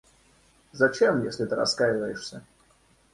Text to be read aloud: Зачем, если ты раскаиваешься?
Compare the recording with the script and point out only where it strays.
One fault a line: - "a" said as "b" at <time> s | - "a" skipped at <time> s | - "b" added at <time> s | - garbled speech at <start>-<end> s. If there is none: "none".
none